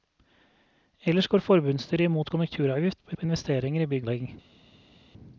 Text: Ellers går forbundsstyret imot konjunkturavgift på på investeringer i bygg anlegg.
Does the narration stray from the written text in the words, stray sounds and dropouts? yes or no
no